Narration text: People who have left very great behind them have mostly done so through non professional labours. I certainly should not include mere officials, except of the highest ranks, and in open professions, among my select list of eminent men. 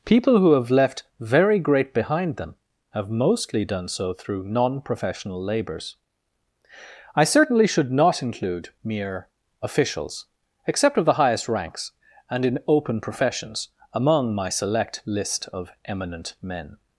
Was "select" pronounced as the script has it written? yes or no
yes